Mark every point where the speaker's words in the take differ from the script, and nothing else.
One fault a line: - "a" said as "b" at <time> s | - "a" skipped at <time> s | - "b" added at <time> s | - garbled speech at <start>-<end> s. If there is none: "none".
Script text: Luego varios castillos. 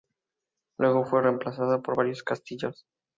- "fue reemplazada por" added at 1.0 s